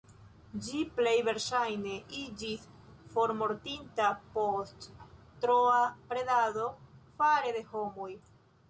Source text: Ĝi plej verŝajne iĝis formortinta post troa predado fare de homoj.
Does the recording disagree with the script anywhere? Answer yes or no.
no